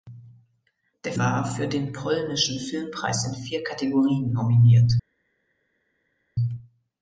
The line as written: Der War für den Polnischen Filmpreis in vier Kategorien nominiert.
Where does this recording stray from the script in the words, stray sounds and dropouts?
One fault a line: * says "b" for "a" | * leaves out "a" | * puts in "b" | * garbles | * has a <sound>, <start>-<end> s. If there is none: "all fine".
all fine